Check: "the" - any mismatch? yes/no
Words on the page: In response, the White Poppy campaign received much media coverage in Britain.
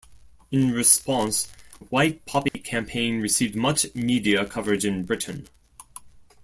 yes